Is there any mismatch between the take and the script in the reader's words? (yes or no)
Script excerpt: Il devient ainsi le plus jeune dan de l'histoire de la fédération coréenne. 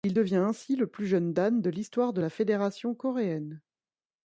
no